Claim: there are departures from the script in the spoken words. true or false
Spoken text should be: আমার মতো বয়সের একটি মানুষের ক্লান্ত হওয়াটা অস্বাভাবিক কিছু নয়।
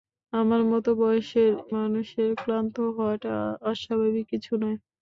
true